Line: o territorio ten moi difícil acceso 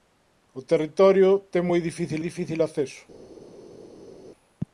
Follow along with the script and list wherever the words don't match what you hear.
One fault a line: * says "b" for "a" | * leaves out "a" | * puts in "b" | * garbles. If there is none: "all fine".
* puts in "difícil"